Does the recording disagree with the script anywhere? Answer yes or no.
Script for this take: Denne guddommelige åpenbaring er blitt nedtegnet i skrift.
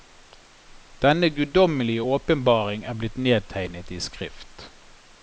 no